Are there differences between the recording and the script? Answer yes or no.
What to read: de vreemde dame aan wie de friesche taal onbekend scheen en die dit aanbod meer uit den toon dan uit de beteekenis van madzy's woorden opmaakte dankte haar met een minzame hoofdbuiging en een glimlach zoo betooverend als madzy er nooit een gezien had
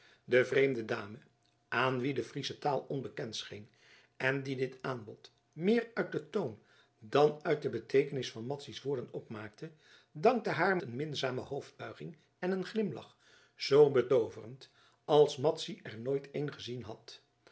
yes